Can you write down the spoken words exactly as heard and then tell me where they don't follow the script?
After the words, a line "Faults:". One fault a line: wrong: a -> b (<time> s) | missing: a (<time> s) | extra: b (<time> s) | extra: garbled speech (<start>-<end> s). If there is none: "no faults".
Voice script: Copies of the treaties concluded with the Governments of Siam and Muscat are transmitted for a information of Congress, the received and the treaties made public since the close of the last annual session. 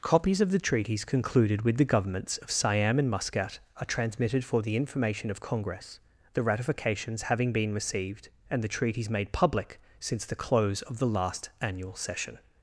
Copies of the treaties concluded with the Governments of Siam and Muscat are transmitted for the information of Congress, the ratifications having been received and the treaties made public since the close of the last annual session.
Faults:
wrong: a -> the (4.6 s)
extra: ratifications having been (6.4 s)